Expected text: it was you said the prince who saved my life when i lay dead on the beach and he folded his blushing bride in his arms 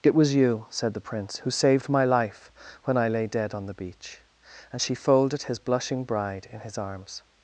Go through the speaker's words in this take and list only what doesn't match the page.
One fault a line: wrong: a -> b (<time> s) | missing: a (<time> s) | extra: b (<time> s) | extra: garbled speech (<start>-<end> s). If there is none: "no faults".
wrong: he -> she (4.8 s)